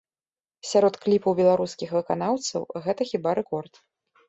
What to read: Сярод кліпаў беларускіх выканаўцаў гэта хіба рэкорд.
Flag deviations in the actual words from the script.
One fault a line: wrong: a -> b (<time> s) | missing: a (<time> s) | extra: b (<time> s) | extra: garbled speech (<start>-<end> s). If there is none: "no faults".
no faults